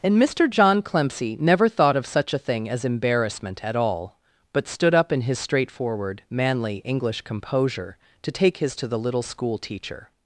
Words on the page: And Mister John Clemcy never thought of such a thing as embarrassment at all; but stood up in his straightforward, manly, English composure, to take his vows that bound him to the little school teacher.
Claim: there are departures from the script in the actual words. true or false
true